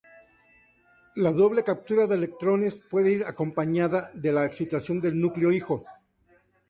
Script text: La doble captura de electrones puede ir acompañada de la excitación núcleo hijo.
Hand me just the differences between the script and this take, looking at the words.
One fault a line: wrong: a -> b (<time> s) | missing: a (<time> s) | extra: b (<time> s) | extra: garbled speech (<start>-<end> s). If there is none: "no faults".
extra: del (5.0 s)